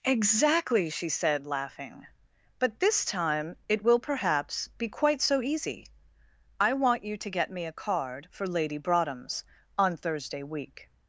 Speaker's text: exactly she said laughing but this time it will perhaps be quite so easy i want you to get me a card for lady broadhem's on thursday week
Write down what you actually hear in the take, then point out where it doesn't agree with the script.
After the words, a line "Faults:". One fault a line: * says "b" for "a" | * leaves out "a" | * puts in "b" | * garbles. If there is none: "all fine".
exactly she said laughing but this time it will perhaps be quite so easy i want you to get me a card for lady broadhem's on thursday week
Faults:
all fine